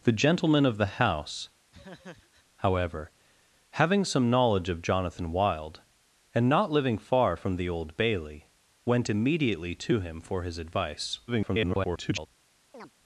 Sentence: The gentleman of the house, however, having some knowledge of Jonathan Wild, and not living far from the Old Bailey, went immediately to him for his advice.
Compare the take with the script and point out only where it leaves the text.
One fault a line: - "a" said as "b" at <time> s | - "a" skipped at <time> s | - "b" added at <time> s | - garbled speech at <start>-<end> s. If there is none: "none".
- garbled speech at 11.3-12.3 s